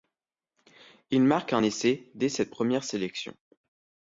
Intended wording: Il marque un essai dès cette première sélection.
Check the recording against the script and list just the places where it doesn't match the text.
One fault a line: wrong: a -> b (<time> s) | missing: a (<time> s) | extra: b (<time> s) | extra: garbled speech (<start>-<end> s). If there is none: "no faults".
no faults